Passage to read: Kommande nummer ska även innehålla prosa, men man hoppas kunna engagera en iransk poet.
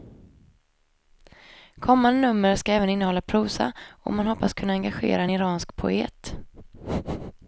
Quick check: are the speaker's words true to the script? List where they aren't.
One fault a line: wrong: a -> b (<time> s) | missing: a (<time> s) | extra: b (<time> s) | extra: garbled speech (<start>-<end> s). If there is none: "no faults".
wrong: men -> och (3.9 s)